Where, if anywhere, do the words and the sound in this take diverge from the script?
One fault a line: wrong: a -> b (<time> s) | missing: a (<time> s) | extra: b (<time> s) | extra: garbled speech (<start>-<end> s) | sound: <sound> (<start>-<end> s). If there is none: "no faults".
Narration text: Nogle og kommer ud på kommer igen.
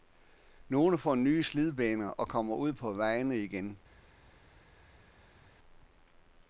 extra: får nye slidbaner (1.0 s)
wrong: kommer -> vejene (2.9 s)